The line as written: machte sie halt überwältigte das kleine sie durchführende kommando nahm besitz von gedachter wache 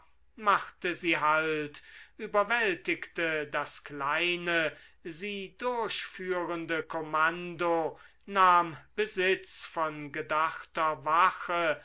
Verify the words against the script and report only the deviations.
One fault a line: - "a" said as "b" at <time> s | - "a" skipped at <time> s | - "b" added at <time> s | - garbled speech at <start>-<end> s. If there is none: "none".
none